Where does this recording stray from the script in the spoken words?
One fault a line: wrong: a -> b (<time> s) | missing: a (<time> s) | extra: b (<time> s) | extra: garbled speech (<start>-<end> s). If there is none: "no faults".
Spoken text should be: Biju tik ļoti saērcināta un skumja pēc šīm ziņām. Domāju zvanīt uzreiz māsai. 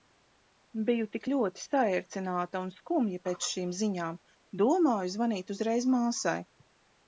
no faults